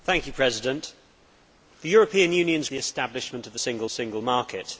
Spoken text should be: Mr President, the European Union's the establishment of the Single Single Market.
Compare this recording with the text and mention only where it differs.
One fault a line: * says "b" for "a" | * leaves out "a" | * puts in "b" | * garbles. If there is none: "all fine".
all fine